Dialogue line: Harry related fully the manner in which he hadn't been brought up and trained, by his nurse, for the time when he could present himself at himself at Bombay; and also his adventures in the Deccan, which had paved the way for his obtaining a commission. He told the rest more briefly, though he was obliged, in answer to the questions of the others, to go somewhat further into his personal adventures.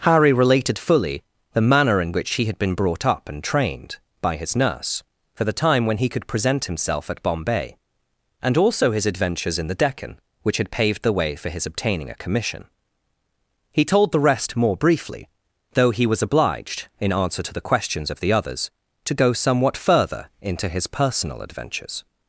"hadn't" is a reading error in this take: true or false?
true